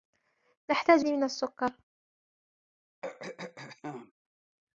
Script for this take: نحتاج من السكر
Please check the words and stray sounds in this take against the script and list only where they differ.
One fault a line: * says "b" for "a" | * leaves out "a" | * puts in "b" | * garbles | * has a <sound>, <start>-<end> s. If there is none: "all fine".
* has a throat clearing, 3.0-4.1 s